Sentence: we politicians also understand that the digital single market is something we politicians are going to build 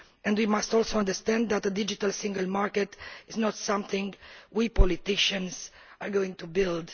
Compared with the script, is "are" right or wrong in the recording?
right